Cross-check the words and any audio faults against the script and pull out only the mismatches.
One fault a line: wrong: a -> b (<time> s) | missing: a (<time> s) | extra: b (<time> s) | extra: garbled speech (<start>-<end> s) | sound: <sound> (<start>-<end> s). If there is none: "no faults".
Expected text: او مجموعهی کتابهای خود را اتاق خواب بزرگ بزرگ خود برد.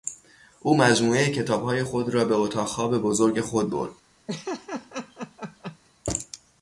extra: به (2.2 s)
missing: بزرگ (3.4 s)
sound: laugh (4.3-5.8 s)